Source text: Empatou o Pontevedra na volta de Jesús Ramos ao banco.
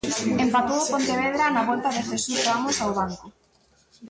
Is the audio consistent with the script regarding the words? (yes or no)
yes